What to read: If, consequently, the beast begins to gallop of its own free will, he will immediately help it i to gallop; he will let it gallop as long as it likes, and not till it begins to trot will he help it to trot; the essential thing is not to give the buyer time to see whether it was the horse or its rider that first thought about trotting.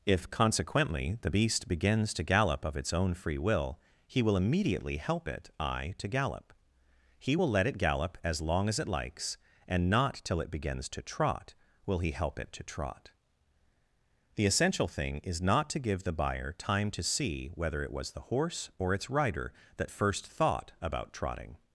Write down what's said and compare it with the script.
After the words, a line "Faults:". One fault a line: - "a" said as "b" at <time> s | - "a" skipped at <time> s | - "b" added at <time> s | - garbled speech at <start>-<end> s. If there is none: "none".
If, consequently, the beast begins to gallop of its own free will, he will immediately help it i to gallop; he will let it gallop as long as it likes, and not till it begins to trot will he help it to trot; the essential thing is not to give the buyer time to see whether it was the horse or its rider that first thought about trotting.
Faults:
none